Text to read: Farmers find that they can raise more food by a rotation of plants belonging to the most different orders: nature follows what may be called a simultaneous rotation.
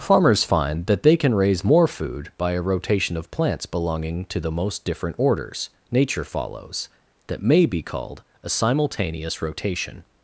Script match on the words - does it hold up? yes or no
no